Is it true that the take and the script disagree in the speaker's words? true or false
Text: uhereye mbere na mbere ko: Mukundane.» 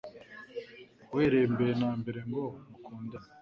true